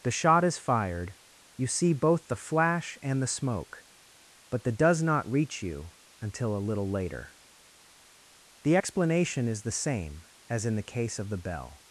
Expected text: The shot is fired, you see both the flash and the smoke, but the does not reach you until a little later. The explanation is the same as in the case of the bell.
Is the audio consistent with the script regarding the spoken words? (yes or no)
yes